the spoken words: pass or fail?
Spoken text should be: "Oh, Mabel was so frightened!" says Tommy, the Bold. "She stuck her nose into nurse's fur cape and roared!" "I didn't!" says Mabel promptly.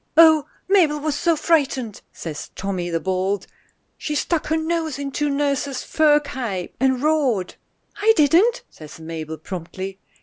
pass